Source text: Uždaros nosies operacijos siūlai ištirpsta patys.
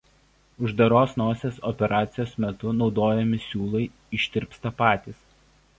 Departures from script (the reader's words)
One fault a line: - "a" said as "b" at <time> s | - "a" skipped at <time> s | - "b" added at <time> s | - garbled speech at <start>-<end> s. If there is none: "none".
- "metu naudojami" added at 2.4 s